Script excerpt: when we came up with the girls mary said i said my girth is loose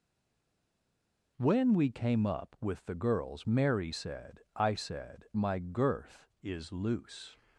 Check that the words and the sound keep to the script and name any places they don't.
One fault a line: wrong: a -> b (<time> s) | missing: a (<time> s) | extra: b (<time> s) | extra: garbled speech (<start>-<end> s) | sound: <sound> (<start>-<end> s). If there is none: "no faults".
no faults